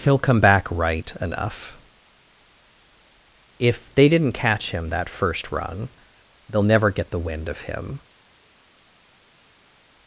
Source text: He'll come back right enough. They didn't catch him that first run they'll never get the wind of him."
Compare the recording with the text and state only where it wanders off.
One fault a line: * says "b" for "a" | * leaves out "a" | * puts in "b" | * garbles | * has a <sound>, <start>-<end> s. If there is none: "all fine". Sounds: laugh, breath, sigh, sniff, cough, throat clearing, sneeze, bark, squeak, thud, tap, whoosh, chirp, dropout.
* puts in "If"